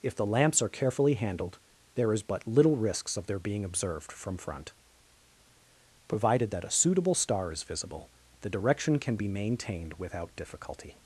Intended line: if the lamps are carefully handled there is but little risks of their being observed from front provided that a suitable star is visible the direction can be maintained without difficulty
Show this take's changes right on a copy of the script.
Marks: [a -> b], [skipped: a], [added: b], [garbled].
if the lamps are carefully handled there is but little risks of their being observed from front provided that a suitable star is visible the direction can be maintained without difficulty